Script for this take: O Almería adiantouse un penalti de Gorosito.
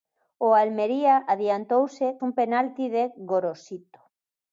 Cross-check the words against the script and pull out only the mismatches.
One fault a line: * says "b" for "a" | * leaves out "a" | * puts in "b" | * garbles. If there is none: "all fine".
all fine